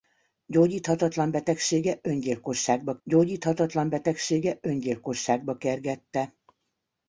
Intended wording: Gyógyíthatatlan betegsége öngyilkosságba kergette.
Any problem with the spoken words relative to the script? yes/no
yes